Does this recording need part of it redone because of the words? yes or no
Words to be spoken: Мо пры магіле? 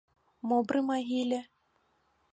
no